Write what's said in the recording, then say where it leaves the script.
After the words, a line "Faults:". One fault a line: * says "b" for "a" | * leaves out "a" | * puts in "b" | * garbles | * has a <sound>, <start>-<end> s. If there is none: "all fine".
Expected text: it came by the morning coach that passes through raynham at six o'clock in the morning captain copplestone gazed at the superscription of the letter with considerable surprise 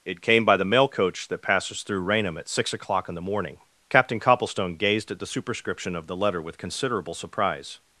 it came by the mail coach that passes through raynham at six o'clock in the morning captain copplestone gazed at the superscription of the letter with considerable surprise
Faults:
* says "mail" for "morning"